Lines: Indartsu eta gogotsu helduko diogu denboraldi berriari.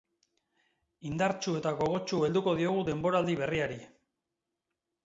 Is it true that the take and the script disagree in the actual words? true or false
false